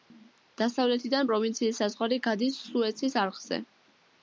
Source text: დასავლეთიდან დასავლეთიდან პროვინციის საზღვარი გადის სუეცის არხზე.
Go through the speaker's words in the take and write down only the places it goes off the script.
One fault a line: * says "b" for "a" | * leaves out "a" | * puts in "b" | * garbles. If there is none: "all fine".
* leaves out "დასავლეთიდან"